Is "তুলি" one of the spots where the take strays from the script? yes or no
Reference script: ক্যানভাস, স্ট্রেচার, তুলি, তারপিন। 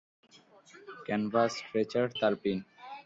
yes